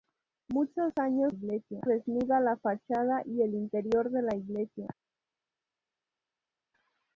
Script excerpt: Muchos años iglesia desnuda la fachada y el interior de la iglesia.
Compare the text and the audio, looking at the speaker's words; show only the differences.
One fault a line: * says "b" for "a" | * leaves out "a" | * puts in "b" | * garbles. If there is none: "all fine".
all fine